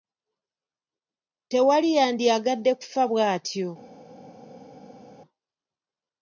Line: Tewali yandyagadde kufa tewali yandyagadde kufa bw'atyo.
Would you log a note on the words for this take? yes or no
yes